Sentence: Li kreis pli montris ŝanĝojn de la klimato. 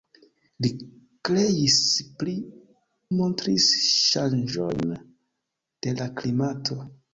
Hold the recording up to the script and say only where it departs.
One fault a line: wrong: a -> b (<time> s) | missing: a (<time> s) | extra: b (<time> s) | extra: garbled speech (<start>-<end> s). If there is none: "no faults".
no faults